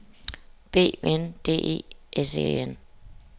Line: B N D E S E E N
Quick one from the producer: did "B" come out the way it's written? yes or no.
yes